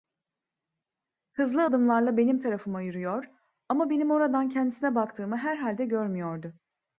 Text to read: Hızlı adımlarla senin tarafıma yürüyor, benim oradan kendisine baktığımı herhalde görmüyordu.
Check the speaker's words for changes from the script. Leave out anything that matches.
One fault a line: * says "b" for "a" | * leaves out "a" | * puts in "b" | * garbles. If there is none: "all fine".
* says "benim" for "senin"
* puts in "ama"